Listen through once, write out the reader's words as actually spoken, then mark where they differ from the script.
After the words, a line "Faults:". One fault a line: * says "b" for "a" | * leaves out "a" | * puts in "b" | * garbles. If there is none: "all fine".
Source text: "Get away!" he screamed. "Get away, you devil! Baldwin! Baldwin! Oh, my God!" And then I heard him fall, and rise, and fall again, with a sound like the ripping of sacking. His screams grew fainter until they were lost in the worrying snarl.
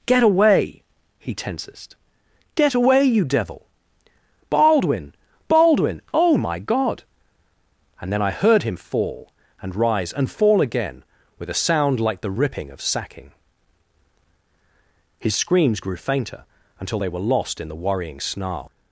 "Get away!" he tensest. "Get away, you devil! Baldwin! Baldwin! Oh, my God!" And then I heard him fall, and rise, and fall again, with a sound like the ripping of sacking. His screams grew fainter until they were lost in the worrying snarl.
Faults:
* says "tensest" for "screamed"